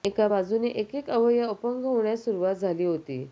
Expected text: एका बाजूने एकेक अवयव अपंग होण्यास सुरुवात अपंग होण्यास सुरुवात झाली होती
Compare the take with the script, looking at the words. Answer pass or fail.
fail